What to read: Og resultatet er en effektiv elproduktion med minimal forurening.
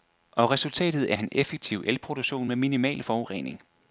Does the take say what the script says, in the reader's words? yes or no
yes